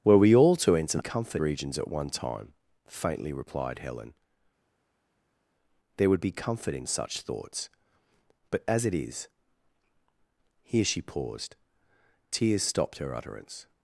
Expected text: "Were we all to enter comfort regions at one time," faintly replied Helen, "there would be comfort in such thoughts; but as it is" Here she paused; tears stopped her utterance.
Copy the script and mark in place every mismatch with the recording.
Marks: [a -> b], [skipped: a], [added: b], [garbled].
"Were we all to enter comfort regions at one time," faintly replied Helen, "there would be comfort in such thoughts; but as it is" Here she paused; tears stopped her utterance.